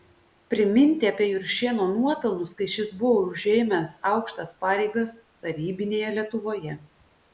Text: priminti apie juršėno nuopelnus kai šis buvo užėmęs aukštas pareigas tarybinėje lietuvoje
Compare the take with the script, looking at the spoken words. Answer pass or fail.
pass